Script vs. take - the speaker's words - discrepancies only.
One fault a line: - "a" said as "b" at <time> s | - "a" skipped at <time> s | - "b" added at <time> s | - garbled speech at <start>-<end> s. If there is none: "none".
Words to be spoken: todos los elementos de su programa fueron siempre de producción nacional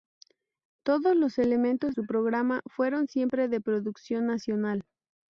- "de" skipped at 1.9 s